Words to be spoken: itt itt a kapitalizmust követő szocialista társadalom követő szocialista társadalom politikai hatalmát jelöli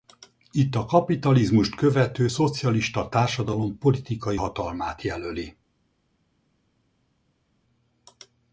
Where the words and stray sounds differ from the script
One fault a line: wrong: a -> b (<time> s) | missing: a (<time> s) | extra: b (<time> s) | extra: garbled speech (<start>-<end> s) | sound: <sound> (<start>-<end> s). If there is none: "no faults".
missing: itt (0.8 s)
missing: követő szocialista társadalom (3.8 s)